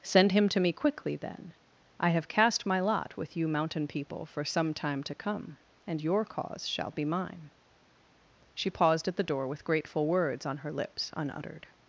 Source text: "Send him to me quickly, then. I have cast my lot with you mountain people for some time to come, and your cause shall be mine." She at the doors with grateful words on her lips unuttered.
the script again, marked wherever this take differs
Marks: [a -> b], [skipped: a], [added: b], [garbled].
"Send him to me quickly, then. I have cast my lot with you mountain people for some time to come, and your cause shall be mine." She [added: paused] at the [doors -> door] with grateful words on her lips unuttered.